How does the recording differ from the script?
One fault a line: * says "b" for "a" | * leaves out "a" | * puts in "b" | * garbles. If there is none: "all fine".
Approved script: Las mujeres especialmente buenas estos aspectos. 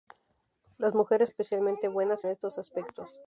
all fine